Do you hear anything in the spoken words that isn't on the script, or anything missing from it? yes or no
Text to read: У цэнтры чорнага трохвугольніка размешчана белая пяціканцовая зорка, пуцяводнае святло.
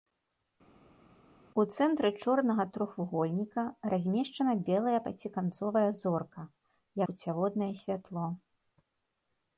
no